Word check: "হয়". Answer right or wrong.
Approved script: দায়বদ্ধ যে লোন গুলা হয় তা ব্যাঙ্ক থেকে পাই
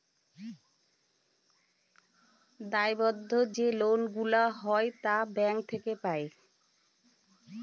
right